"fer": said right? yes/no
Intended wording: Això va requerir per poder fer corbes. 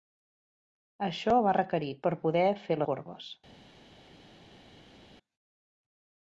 yes